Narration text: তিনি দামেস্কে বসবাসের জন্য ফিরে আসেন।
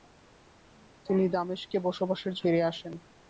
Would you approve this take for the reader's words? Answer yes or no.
no